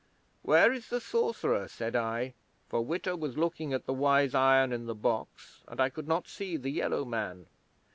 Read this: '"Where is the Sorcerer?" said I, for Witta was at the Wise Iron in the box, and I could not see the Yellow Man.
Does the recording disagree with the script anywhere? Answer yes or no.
yes